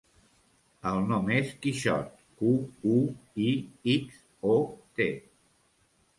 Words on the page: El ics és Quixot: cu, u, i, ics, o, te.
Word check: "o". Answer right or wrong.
right